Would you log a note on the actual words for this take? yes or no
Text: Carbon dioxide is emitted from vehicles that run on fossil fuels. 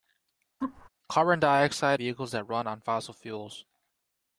yes